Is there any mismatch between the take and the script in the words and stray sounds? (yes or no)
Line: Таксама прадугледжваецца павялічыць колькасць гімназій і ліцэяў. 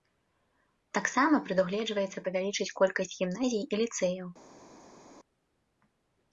no